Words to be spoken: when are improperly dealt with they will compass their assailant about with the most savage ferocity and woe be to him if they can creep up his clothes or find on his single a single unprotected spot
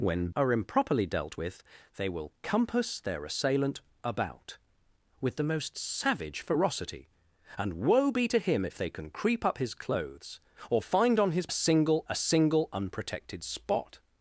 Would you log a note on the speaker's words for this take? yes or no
no